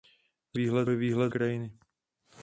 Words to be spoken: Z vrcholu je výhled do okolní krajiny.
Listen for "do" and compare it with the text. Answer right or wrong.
wrong